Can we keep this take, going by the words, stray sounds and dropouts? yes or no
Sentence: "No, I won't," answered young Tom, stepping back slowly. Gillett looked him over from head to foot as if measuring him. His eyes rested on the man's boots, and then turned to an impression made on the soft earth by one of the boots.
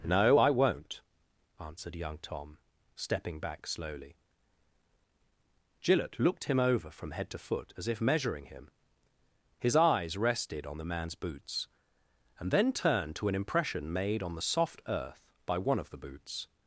yes